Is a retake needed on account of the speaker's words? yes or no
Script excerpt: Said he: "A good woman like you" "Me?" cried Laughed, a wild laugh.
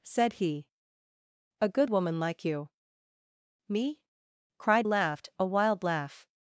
no